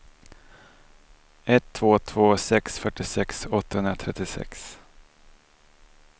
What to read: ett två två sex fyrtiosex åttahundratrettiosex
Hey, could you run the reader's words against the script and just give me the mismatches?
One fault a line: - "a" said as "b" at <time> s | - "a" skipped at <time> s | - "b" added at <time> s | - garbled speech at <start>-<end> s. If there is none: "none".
none